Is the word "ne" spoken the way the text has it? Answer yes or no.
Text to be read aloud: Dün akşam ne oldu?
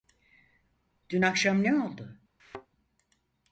yes